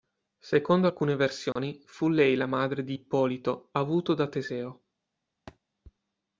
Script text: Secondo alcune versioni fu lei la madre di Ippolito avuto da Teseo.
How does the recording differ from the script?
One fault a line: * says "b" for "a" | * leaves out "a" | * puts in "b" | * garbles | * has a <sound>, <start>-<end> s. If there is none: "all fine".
* has a dropout, 1.5-1.6 s
* has a thud, 5.5-5.6 s